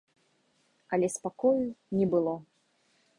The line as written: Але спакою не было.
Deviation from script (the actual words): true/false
false